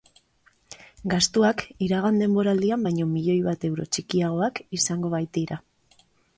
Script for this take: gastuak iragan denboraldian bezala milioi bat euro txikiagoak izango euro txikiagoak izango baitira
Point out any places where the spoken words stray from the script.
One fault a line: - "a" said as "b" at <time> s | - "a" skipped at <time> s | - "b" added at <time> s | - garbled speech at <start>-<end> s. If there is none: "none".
- "bezala" said as "baino" at 2.9 s
- "euro txikiagoak izango" skipped at 5.1 s